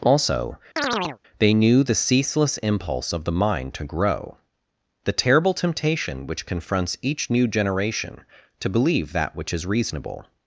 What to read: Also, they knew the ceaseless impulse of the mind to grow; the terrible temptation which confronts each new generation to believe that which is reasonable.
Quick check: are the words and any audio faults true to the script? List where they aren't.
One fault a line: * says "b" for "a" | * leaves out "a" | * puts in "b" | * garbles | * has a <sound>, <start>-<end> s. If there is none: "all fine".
* has a chirp, 0.8-1.2 s